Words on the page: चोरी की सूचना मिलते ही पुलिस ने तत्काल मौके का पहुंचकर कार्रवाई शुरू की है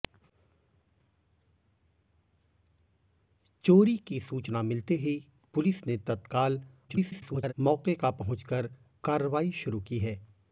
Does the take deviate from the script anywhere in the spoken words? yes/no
yes